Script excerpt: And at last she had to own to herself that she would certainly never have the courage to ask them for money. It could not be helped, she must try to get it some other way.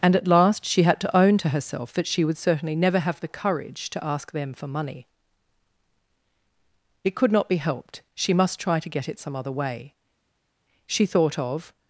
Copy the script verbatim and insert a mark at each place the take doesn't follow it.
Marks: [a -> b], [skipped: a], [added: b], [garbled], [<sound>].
And at last she had to own to herself that she would certainly never have the courage to ask them for money. It could not be helped, she must try to get it some other way. [added: She thought of]